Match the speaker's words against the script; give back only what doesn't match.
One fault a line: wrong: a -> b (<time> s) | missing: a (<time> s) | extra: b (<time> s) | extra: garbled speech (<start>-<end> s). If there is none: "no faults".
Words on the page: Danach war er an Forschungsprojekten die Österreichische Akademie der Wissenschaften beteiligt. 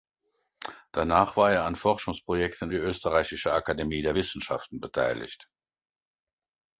no faults